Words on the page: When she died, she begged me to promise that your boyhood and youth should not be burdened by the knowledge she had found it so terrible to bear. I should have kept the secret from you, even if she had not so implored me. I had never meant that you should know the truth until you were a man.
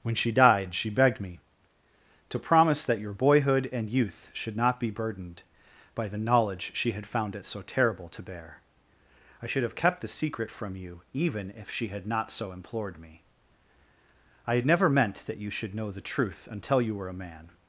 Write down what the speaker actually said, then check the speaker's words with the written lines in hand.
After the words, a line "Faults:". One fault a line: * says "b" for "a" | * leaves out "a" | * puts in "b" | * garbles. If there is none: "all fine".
When she died, she begged me to promise that your boyhood and youth should not be burdened by the knowledge she had found it so terrible to bear. I should have kept the secret from you, even if she had not so implored me. I had never meant that you should know the truth until you were a man.
Faults:
all fine